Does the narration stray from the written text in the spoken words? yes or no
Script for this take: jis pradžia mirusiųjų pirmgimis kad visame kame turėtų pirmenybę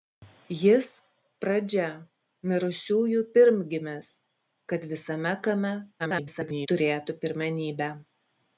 yes